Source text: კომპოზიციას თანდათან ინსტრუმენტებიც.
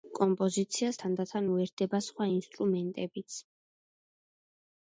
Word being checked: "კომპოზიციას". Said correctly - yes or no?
yes